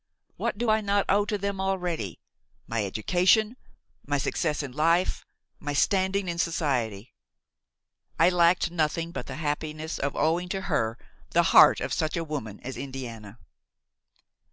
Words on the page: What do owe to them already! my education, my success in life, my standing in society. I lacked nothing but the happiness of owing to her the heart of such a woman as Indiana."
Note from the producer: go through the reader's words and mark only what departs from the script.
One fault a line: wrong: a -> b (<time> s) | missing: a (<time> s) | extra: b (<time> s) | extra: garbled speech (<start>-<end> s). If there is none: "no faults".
extra: I not (0.7 s)